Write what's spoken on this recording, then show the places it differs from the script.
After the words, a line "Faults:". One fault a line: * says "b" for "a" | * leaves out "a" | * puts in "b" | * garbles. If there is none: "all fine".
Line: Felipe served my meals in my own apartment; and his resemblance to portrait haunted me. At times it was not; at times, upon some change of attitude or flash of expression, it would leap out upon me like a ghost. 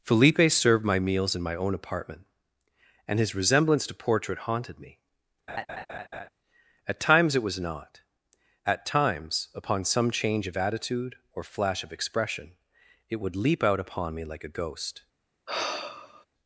Felipe served my meals in my own apartment; and his resemblance to portrait haunted me. At times it was not; at times, upon some change of attitude or flash of expression, it would leap out upon me like a ghost.
Faults:
all fine